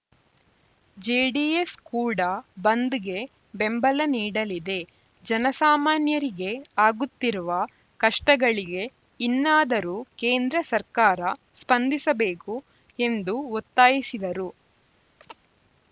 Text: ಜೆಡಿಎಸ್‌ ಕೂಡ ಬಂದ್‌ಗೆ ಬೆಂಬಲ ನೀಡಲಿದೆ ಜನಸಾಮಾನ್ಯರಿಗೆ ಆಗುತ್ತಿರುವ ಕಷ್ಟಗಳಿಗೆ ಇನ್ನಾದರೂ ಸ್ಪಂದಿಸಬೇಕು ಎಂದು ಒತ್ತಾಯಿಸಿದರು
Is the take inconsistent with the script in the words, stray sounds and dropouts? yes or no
yes